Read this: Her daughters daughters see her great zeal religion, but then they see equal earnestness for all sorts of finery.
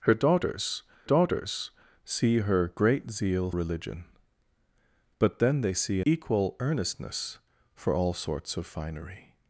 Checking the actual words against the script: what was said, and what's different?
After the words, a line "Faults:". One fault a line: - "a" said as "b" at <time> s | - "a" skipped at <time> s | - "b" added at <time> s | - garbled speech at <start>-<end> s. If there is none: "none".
Her daughters daughters see her great zeal religion, but then they see equal earnestness for all sorts of finery.
Faults:
none